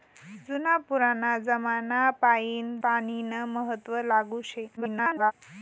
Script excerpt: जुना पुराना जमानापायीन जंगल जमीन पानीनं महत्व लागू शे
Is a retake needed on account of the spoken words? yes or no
yes